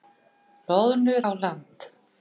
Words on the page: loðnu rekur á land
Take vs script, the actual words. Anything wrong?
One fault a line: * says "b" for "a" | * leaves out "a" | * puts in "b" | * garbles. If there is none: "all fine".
* leaves out "rekur"